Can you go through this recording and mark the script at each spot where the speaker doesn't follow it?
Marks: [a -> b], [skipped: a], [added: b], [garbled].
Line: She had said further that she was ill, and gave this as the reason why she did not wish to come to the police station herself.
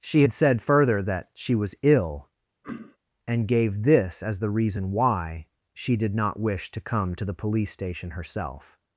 She had said further that she was ill, and gave this as the reason why she did not wish to come to the police station herself.